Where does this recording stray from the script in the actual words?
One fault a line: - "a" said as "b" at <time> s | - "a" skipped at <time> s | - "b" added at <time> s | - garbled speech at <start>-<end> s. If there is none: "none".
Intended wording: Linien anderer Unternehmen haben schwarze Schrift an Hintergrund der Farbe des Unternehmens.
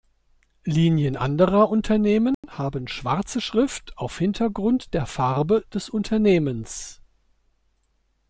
- "an" said as "auf" at 4.0 s